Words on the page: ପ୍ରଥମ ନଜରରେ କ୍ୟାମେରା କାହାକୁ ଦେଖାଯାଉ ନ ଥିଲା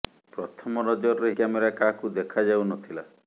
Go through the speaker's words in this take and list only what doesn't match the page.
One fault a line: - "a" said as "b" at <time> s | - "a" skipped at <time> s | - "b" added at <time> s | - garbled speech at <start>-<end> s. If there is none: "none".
none